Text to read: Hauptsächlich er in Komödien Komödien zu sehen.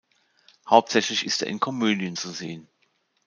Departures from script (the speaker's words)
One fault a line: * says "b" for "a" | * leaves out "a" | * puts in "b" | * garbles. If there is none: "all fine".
* puts in "ist"
* leaves out "Komödien"